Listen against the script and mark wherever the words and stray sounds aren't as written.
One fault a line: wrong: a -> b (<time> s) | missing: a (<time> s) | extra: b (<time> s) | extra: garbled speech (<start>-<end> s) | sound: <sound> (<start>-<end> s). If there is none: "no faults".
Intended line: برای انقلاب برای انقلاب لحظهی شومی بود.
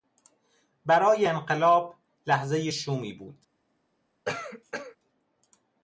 missing: برای انقلاب (1.9 s)
sound: cough (4.2-5.0 s)